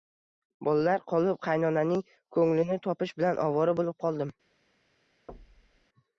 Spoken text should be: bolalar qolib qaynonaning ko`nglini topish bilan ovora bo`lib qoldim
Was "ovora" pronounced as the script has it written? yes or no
yes